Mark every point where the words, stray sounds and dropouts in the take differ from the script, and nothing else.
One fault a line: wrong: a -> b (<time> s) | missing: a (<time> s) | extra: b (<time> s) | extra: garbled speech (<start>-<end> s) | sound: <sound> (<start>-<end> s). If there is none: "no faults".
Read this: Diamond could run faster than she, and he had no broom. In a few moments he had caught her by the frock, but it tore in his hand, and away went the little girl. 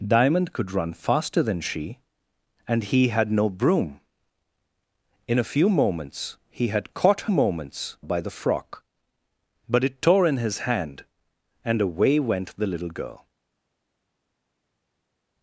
wrong: her -> moments (7.3 s)